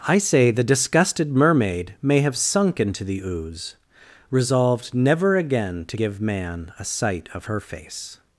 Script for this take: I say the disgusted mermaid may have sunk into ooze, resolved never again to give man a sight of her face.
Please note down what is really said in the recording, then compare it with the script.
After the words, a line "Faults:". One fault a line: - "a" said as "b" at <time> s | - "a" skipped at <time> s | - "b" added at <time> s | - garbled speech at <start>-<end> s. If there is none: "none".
I say the disgusted mermaid may have sunk into the ooze, resolved never again to give man a sight of her face.
Faults:
- "the" added at 3.0 s